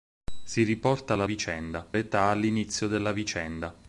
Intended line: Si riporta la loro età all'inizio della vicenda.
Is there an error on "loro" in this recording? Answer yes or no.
yes